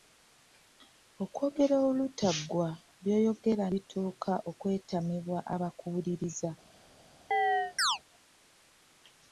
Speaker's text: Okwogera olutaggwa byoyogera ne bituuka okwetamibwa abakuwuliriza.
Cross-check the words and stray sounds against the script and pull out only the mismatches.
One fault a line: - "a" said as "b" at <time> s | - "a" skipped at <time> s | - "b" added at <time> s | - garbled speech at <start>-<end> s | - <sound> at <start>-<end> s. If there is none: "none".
- "ne" skipped at 3.6 s
- chirp at 7.3-8.0 s